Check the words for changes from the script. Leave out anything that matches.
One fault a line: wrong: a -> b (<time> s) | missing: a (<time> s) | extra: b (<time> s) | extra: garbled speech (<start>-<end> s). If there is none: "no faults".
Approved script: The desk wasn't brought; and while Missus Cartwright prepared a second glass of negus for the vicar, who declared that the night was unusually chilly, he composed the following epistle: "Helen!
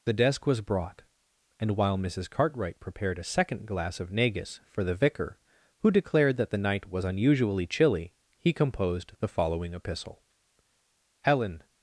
wrong: wasn't -> was (0.5 s)